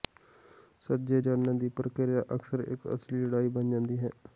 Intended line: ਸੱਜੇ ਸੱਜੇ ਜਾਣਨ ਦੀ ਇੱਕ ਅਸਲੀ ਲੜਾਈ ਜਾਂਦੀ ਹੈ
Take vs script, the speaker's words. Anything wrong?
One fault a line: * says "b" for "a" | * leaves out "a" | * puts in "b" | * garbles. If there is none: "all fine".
* leaves out "ਸੱਜੇ"
* puts in "ਪ੍ਰਕਿਰਿਆ ਅਕਸਰ"
* puts in "ਬਣ"